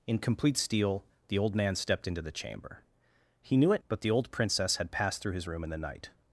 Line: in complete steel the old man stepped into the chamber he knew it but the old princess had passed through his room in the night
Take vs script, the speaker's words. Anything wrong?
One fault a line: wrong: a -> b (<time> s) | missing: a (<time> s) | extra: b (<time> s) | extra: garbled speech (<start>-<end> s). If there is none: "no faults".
no faults